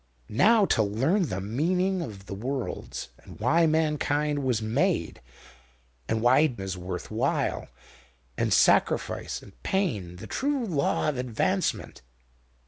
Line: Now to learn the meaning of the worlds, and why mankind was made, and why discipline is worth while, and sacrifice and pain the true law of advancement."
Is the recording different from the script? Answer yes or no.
yes